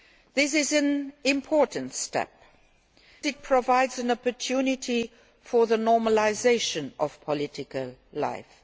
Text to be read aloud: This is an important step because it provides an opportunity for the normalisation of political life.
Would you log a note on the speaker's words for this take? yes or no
yes